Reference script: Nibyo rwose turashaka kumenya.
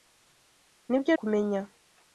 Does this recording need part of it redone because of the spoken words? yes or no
yes